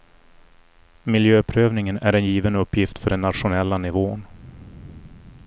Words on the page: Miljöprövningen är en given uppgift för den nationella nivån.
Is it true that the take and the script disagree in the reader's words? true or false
false